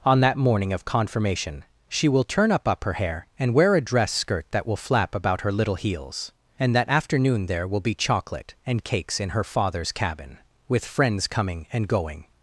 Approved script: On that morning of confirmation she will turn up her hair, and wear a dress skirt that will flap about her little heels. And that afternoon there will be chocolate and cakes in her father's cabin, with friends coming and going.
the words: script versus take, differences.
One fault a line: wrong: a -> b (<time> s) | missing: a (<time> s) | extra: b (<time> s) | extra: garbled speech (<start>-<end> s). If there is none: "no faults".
extra: up (2.7 s)